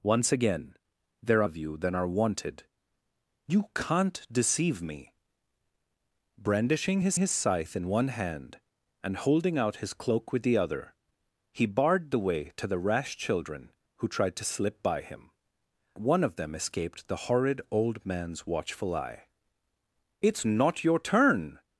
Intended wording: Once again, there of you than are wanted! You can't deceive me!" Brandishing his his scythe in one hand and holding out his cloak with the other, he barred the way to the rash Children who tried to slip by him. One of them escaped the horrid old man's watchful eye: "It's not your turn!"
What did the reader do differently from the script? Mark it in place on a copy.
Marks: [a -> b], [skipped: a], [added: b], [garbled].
Once again, there of you than are wanted! You can't deceive me!" Brandishing his his scythe in one hand and holding out his cloak with the other, he barred the way to the rash Children who tried to slip by him. One of them escaped the horrid old man's watchful eye: "It's not your turn!"